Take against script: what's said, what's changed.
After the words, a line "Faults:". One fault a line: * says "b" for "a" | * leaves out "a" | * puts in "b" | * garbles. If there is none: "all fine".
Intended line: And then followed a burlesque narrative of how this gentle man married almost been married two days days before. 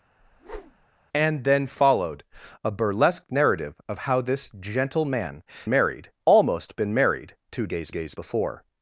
And then followed a burlesque narrative of how this gentle man married almost been married two days days before.
Faults:
all fine